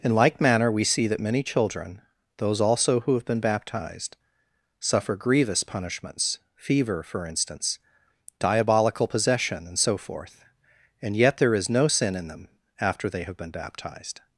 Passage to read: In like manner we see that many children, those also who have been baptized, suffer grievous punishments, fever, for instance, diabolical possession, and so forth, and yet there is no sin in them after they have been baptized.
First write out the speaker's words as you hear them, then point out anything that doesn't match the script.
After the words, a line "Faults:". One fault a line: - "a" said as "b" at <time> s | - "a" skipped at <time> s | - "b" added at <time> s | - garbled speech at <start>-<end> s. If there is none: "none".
In like manner we see that many children, those also who have been baptized, suffer grievous punishments, fever, for instance, diabolical possession, and so forth, and yet there is no sin in them after they have been baptized.
Faults:
none